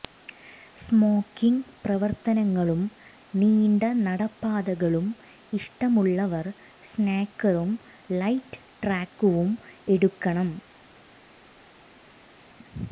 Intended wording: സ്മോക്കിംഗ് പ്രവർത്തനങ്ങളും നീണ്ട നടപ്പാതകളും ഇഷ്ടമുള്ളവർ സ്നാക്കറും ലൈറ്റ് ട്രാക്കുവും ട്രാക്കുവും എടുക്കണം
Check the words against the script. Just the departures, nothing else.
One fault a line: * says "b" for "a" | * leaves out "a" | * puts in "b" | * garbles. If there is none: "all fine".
* leaves out "ട്രാക്കുവും"